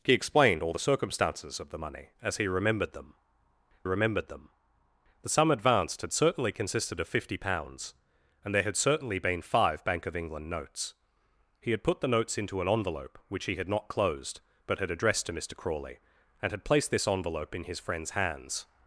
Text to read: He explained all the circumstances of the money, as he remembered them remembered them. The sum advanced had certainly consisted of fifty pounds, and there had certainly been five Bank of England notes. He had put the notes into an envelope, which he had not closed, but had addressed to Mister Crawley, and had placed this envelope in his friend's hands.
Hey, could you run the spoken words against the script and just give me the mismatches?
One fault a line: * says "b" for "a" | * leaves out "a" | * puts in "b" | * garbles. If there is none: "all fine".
all fine